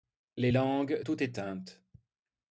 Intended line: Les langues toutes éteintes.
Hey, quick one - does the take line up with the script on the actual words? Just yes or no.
yes